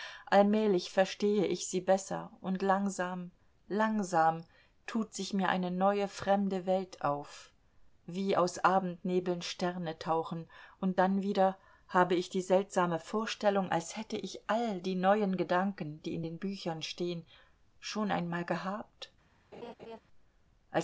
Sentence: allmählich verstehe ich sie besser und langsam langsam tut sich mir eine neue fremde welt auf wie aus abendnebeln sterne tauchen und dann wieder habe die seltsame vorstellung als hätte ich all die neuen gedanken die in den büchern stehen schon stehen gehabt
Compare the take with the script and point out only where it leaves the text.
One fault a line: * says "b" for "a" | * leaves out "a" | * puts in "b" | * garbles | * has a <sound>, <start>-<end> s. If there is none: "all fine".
* puts in "ich"
* says "einmal" for "stehen"
* has a laugh, 19.5-20.0 s